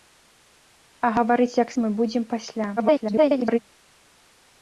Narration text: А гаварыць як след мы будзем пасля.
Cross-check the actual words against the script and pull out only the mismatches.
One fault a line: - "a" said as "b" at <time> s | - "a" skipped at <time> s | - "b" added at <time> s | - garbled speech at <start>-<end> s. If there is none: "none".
- "след" skipped at 1.7 s
- garbled speech at 2.8-3.6 s